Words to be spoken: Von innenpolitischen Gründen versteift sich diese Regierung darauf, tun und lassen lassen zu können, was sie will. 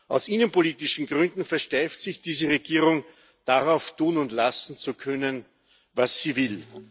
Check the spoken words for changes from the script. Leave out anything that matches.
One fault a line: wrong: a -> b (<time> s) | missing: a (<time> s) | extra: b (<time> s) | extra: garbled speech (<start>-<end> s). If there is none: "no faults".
wrong: Von -> Aus (0.1 s)
missing: lassen (4.8 s)